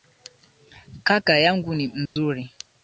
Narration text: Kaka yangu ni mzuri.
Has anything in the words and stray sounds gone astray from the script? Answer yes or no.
yes